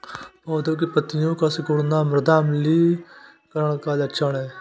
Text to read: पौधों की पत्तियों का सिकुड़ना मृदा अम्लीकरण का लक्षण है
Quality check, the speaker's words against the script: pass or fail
pass